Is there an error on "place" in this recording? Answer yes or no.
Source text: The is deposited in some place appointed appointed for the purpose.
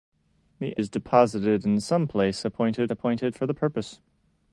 no